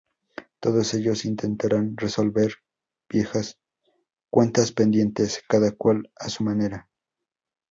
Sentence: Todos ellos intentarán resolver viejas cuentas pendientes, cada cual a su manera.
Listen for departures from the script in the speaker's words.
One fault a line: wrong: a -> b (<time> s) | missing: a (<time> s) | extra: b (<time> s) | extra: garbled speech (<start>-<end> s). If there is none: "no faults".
no faults